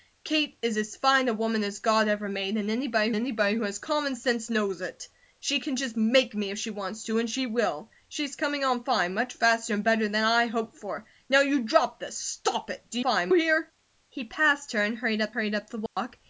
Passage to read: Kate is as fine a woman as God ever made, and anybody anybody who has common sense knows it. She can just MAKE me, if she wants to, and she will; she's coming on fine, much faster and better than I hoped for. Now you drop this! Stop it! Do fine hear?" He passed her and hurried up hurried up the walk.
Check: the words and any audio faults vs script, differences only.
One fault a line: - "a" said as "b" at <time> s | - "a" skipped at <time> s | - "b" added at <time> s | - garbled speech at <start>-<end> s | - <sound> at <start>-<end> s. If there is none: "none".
- dropout at 15.9-16.0 s